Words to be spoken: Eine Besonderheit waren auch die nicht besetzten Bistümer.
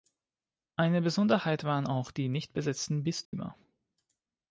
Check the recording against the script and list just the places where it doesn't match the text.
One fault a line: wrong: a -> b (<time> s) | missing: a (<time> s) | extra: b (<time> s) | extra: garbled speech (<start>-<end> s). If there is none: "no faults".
no faults